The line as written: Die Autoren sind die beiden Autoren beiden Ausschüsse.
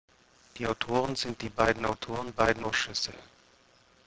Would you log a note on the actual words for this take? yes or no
no